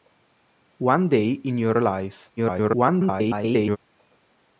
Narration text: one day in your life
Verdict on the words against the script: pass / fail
fail